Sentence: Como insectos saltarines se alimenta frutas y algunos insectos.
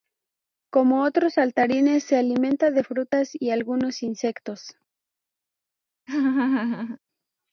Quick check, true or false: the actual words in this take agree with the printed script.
false